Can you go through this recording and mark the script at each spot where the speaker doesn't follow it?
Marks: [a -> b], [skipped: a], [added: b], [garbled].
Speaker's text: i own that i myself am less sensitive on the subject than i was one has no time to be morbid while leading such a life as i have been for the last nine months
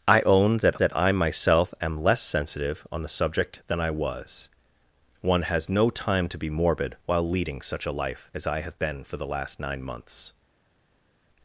i own that [added: that] i myself am less sensitive on the subject than i was one has no time to be morbid while leading such a life as i have been for the last nine months